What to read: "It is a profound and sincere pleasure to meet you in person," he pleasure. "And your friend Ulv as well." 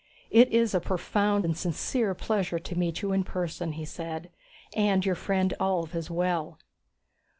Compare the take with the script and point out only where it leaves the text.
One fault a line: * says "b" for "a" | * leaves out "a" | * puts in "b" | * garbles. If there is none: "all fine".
* says "said" for "pleasure"